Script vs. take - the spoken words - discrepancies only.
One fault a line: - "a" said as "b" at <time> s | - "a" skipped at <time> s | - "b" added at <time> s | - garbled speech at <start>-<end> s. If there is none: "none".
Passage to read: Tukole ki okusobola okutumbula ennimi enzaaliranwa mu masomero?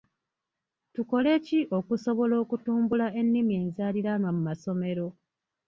none